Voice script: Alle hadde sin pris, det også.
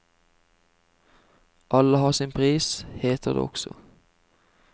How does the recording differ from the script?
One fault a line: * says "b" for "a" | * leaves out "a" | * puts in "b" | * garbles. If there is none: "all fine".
* says "har" for "hadde"
* puts in "heter"